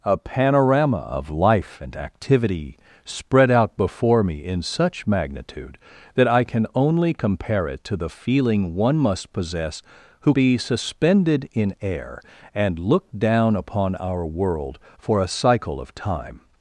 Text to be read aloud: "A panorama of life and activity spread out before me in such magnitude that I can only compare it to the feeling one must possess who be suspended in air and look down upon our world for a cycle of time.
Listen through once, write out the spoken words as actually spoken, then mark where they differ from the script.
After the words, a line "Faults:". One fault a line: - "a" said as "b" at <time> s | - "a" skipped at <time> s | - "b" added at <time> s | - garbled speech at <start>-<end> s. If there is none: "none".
"A panorama of life and activity spread out before me in such magnitude that I can only compare it to the feeling one must possess who be suspended in air and look down upon our world for a cycle of time.
Faults:
none